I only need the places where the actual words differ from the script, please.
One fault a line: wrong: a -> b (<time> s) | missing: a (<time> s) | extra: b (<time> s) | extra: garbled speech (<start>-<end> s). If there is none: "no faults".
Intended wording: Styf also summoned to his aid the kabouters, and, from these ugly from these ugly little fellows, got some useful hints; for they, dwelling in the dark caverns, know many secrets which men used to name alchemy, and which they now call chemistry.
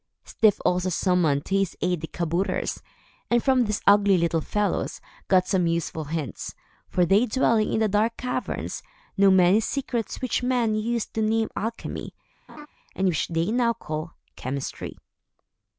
missing: from these ugly (4.2 s)